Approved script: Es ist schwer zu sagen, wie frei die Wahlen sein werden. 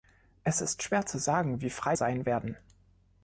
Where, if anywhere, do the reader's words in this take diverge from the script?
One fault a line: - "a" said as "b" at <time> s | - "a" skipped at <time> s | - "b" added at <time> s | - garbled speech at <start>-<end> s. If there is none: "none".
- "die Wahlen" skipped at 1.9 s